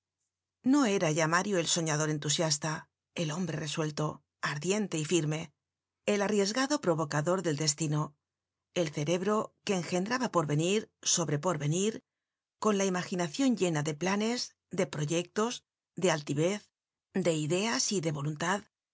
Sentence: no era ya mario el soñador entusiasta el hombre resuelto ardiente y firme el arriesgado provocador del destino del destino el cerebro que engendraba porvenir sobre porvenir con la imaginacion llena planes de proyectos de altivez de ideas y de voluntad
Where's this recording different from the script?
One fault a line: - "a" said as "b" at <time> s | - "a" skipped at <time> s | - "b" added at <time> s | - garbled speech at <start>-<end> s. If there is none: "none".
- "del destino" skipped at 8.1 s
- "de" added at 13.8 s